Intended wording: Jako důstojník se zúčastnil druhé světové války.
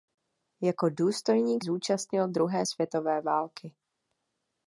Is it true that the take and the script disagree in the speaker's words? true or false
true